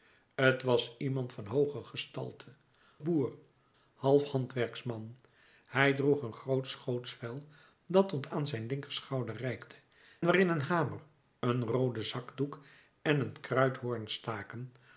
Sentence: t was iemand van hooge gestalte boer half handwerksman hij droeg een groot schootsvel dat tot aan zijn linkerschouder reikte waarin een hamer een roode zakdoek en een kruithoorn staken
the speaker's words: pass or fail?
pass